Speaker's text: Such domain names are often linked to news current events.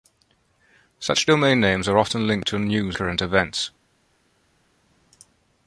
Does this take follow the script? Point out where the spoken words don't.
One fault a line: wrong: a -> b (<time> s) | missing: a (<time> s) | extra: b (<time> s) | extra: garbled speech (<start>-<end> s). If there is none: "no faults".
no faults